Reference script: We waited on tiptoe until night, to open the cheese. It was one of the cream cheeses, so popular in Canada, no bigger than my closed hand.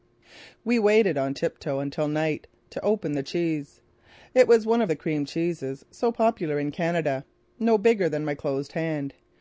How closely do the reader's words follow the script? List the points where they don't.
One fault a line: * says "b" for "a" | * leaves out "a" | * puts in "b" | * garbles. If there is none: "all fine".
all fine